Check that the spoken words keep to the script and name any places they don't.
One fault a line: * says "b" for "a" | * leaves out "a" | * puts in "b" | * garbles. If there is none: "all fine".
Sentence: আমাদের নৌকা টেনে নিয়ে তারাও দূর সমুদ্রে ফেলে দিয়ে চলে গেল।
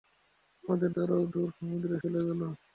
* leaves out "নৌকা টেনে নিয়ে"
* leaves out "ফেলে দিয়ে"